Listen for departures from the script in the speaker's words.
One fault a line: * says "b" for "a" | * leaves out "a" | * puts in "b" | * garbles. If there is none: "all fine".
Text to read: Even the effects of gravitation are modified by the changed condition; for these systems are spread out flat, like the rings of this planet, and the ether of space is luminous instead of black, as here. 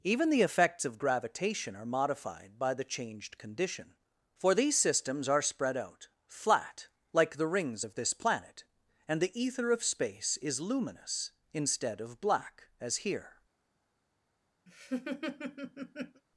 all fine